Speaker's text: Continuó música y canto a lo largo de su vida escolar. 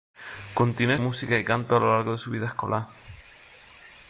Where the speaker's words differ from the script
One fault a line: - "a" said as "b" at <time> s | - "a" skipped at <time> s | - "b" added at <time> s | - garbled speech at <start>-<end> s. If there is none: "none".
none